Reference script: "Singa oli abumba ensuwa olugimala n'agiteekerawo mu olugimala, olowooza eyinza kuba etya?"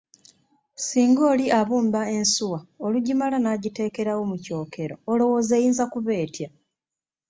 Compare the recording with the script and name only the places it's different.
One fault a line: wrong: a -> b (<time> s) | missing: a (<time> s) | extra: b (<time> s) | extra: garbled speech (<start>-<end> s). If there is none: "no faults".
wrong: olugimala -> kyokero (4.5 s)